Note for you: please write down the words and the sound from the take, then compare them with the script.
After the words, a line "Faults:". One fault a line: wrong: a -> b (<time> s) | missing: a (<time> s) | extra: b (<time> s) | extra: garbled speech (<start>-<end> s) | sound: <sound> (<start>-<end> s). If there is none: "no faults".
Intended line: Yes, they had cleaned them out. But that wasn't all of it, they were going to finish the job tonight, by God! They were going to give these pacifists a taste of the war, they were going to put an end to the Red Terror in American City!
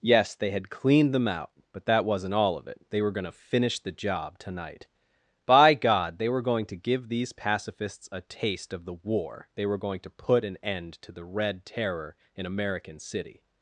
Yes, they had cleaned them out. But that wasn't all of it, they were going to finish the job tonight, by God! They were going to give these pacifists a taste of the war, they were going to put an end to the Red Terror in American City!
Faults:
no faults